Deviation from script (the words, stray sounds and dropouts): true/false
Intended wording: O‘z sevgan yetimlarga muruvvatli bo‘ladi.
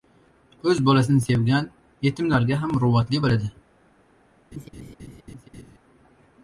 true